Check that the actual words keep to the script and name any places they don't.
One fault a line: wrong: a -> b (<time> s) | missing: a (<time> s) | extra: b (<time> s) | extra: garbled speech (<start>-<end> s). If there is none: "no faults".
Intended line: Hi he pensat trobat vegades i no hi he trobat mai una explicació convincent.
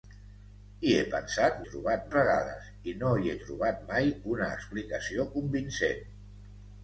no faults